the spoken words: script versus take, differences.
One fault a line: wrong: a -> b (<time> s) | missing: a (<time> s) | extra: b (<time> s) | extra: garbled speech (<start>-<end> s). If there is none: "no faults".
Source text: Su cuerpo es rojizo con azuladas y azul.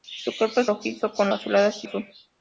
no faults